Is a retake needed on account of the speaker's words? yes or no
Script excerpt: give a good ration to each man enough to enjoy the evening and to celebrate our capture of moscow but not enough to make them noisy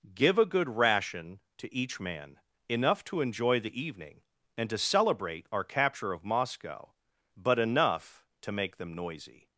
yes